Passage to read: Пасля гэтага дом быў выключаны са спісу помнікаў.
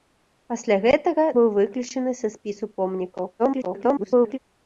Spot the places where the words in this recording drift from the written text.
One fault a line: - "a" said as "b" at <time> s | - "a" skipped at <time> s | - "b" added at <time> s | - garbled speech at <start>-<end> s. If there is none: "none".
- "дом" skipped at 1.2 s
- garbled speech at 3.4-4.4 s